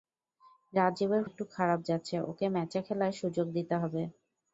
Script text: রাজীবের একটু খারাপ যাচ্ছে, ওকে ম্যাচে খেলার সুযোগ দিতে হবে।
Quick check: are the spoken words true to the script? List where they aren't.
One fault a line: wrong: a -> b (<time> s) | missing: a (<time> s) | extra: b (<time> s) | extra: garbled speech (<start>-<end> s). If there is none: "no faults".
no faults